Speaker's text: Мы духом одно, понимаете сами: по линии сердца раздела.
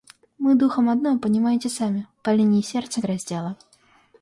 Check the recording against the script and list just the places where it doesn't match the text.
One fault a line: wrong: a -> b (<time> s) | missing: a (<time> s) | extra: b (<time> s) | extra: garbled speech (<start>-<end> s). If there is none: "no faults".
no faults